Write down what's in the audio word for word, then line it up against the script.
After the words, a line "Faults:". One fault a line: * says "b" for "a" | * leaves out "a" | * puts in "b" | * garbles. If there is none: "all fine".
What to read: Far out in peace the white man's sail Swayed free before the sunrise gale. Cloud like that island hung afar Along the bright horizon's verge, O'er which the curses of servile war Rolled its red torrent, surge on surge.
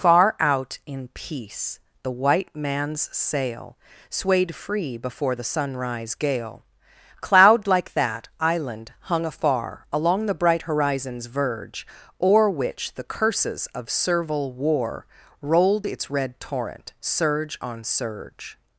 Far out in peace the white man's sail Swayed free before the sunrise gale. Cloud like that island hung afar Along the bright horizon's verge, O'er which the curses of servile war Rolled its red torrent, surge on surge.
Faults:
all fine